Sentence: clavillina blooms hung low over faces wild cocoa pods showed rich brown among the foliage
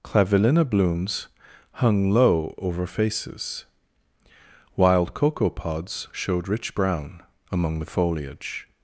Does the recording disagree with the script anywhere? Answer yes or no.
no